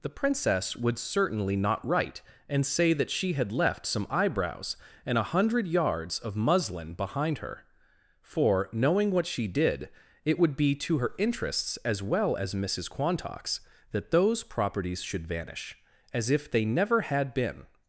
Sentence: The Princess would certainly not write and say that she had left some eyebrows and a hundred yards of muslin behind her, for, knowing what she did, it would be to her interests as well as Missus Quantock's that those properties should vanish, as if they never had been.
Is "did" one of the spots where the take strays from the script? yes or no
no